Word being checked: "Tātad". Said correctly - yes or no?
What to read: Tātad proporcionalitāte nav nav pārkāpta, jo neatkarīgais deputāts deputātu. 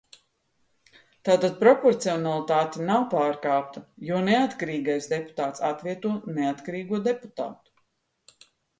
yes